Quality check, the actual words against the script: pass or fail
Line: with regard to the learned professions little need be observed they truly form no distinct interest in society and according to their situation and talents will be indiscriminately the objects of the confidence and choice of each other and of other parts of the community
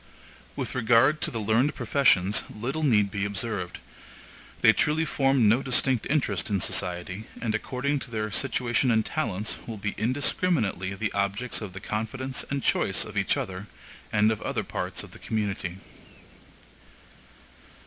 pass